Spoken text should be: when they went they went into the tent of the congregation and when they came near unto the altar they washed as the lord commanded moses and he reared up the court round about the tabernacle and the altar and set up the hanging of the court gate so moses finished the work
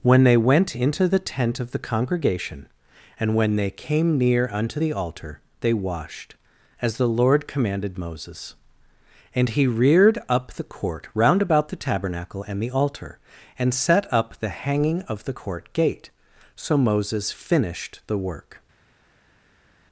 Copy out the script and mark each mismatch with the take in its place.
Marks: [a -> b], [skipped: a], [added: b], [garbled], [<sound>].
when they went [skipped: they went] into the tent of the congregation and when they came near unto the altar they washed as the lord commanded moses and he reared up the court round about the tabernacle and the altar and set up the hanging of the court gate so moses finished the work